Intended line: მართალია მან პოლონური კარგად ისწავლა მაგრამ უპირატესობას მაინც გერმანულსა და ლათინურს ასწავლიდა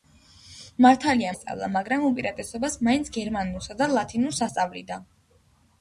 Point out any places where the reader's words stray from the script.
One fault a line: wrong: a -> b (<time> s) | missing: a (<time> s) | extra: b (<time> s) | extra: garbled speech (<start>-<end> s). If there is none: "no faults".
missing: მან პოლონური კარგად (1.3 s)